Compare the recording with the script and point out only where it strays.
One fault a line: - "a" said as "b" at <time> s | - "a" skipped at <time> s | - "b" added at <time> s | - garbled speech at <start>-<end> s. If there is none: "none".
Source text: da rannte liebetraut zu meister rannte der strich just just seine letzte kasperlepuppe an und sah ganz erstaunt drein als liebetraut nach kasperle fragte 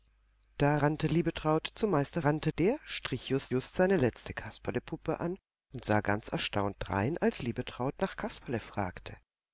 none